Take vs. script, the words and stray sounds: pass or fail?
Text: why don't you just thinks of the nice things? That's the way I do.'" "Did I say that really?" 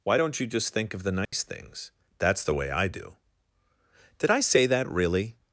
fail